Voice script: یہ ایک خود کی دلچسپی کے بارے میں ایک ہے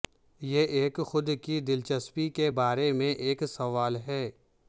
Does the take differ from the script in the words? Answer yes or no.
yes